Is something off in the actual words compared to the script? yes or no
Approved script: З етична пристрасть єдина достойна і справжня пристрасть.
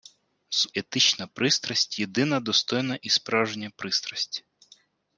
no